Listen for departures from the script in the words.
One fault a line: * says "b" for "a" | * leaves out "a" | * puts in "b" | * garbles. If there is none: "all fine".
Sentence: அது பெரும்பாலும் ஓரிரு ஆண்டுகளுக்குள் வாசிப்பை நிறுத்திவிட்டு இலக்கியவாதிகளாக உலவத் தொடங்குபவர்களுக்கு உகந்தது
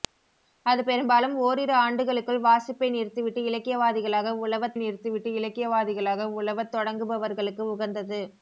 * puts in "நிறுத்திவிட்டு இலக்கியவாதிகளாக உலவத்"